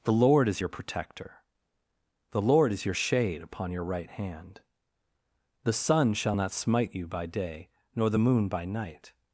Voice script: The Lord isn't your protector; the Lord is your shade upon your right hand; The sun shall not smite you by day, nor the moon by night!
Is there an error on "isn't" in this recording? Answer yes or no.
yes